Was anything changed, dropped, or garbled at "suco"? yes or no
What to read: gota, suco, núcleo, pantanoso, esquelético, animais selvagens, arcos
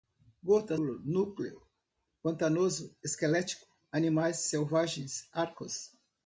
yes